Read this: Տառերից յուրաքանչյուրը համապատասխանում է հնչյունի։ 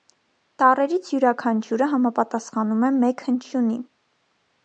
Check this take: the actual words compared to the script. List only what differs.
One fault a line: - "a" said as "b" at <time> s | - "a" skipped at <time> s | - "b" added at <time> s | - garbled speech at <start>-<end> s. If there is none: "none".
- "մեկ" added at 3.0 s